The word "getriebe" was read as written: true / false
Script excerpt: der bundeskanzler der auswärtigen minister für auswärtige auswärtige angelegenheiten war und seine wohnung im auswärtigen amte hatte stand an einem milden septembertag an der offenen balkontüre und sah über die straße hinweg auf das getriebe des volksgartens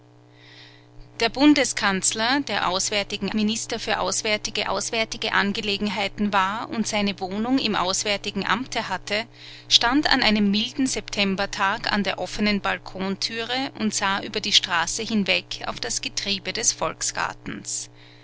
true